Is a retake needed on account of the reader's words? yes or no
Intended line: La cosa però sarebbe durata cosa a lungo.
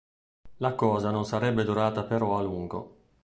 yes